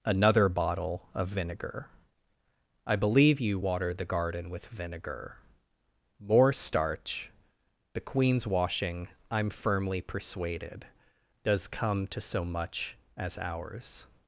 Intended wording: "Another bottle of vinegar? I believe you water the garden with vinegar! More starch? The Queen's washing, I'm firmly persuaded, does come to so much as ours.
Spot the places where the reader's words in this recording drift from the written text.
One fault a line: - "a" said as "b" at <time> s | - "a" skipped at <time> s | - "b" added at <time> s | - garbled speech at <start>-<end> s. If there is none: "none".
none